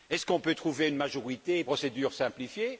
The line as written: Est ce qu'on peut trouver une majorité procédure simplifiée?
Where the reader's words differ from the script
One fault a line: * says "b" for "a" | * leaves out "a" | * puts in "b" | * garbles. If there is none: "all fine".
all fine